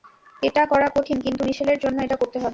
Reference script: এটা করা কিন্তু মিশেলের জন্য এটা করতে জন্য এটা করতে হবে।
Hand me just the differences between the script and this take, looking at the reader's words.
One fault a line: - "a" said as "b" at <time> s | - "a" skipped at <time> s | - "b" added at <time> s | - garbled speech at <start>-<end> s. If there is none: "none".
- "কঠিন" added at 0.9 s
- "জন্য এটা করতে" skipped at 2.4 s